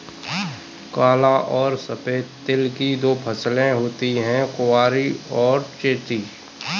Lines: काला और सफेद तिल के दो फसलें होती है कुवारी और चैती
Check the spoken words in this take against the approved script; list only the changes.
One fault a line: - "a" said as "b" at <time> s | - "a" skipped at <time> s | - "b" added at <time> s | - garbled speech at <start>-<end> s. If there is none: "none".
- "के" said as "की" at 2.8 s